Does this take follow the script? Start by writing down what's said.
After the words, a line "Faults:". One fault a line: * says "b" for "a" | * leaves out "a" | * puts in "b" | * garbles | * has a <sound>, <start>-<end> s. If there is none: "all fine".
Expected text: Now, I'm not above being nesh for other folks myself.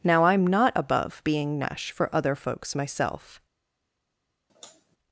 Now, I'm not above being nesh for other folks myself.
Faults:
* has a sigh, 4.5-5.0 s